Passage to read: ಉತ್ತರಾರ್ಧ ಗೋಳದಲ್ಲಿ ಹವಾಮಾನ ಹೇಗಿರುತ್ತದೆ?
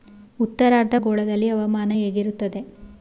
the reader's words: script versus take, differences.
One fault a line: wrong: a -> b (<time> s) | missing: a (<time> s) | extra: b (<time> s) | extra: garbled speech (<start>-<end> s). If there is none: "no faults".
no faults